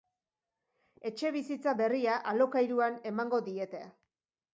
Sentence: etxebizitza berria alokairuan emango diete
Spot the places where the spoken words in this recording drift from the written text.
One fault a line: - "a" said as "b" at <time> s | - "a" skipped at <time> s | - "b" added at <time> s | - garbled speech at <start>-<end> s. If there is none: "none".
none